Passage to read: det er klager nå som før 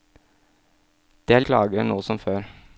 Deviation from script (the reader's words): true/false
false